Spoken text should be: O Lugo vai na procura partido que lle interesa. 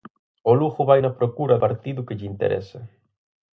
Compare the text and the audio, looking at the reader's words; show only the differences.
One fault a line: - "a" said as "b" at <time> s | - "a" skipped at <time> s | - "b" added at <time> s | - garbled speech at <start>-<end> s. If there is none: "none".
none